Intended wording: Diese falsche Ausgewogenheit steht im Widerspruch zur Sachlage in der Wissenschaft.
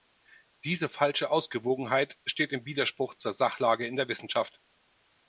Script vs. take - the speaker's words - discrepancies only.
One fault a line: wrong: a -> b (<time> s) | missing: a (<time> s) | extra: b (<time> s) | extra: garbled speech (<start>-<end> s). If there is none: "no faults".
no faults